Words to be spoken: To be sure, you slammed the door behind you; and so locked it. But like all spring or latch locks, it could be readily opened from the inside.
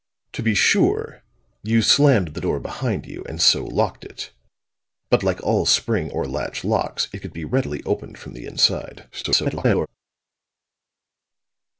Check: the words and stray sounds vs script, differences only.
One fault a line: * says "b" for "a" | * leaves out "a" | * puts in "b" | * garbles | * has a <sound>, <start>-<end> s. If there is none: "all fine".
* garbles